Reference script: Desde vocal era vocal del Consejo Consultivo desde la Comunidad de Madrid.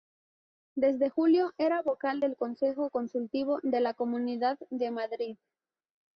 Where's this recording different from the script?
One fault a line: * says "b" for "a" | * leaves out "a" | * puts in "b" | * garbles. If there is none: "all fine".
* says "julio" for "vocal"
* says "de" for "desde"